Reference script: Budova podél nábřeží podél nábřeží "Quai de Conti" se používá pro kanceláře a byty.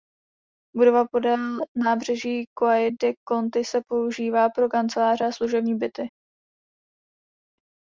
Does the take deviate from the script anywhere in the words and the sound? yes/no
yes